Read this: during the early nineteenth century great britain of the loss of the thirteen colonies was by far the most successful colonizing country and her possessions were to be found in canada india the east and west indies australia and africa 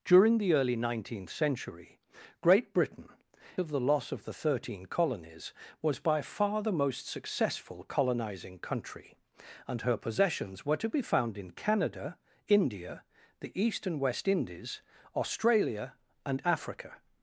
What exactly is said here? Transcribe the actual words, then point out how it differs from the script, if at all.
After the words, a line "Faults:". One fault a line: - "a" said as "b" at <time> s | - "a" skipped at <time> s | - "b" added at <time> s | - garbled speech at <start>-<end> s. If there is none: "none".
during the early nineteenth century great britain of the loss of the thirteen colonies was by far the most successful colonizing country and her possessions were to be found in canada india the east and west indies australia and africa
Faults:
none